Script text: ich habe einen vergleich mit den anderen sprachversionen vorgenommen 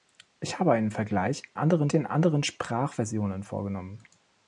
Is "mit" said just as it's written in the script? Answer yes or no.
no